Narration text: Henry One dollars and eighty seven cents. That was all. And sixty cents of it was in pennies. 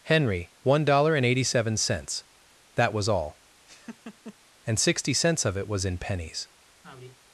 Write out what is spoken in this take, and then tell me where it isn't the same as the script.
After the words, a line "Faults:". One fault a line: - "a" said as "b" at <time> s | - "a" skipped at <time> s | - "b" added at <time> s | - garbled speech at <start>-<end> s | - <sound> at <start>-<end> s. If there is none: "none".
Henry One dollar and eighty seven cents. That was all. And sixty cents of it was in pennies.
Faults:
- "dollars" said as "dollar" at 0.8 s
- laugh at 3.7-4.4 s
- sigh at 6.8-7.2 s